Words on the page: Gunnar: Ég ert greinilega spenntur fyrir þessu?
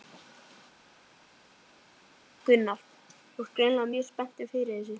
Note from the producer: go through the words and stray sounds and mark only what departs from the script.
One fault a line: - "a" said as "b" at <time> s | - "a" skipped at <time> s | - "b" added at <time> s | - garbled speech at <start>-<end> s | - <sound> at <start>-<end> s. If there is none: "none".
- "Ég" said as "Þú" at 3.4 s
- "mjög" added at 3.9 s